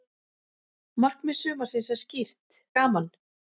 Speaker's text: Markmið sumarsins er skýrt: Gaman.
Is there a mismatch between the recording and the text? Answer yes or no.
no